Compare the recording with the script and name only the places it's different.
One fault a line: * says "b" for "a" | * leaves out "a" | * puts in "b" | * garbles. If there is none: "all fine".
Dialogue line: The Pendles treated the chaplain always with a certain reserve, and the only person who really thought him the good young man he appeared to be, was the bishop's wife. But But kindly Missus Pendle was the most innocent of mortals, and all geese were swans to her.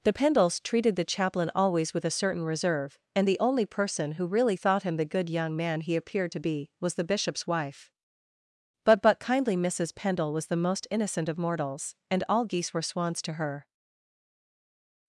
all fine